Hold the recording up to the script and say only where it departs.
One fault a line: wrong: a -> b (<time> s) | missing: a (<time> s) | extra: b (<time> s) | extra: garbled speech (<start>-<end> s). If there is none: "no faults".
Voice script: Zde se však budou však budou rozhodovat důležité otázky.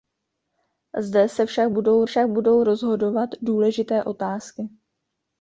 no faults